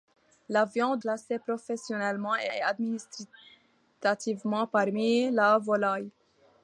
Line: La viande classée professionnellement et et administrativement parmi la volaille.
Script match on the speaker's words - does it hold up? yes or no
yes